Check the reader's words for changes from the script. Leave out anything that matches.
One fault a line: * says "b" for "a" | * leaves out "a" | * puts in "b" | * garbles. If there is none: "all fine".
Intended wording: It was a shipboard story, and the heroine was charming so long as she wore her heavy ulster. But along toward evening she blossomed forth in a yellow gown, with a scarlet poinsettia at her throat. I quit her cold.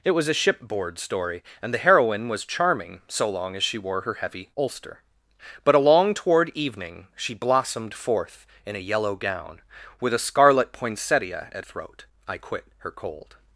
* leaves out "her"